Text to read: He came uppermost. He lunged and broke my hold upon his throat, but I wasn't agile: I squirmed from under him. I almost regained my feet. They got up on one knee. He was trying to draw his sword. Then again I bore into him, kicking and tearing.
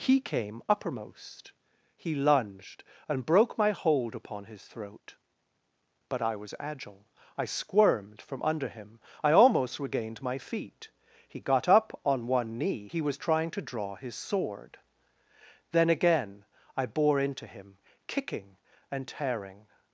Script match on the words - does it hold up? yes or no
no